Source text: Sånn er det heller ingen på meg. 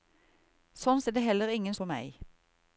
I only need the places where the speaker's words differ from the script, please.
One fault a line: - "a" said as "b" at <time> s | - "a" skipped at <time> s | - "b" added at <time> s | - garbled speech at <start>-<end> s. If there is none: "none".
none